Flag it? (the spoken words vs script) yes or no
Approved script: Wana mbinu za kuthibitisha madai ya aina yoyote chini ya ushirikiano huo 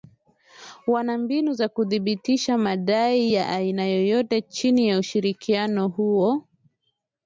no